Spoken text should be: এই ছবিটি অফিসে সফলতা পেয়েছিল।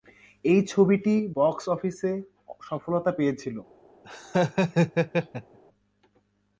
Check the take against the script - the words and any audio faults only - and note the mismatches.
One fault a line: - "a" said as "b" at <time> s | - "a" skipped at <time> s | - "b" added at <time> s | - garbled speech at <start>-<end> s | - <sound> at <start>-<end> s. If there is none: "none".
- "বক্স" added at 1.3 s
- laugh at 4.0-5.6 s